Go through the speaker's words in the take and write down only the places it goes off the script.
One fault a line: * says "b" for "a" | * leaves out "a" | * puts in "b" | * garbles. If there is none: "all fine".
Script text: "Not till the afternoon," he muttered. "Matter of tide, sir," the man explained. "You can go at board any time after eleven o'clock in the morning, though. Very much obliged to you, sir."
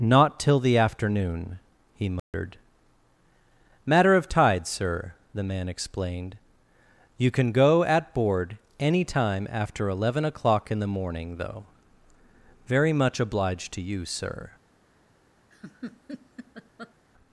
all fine